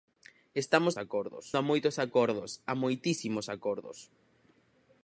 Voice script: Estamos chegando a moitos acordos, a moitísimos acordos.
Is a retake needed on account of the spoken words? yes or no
yes